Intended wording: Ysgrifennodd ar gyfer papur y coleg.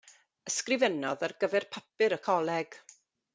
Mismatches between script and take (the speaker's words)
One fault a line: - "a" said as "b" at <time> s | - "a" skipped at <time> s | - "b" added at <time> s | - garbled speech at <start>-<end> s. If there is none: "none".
none